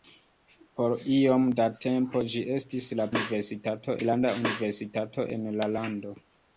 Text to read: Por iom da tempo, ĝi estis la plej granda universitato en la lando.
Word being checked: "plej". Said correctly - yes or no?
no